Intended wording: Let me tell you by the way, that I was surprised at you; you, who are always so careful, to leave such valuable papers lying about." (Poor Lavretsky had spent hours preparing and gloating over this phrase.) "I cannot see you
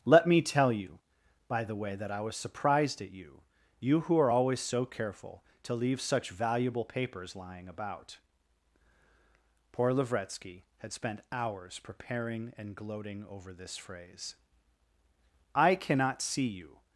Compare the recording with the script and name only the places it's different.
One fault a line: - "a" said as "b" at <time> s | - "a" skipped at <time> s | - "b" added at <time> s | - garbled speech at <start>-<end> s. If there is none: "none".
none